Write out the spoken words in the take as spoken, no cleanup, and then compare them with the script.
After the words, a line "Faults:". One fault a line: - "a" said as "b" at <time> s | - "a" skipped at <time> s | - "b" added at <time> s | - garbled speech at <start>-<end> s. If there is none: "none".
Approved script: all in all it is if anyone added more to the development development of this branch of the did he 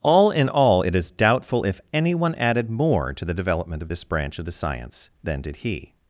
all in all it is doubtful if anyone added more to the development of this branch of the science than did he
Faults:
- "doubtful" added at 1.1 s
- "development" skipped at 3.8 s
- "science than" added at 4.5 s